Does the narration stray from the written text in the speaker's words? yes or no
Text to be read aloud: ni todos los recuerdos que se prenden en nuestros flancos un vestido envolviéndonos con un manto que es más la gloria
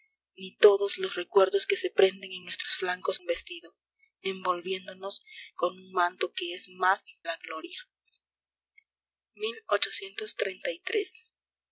no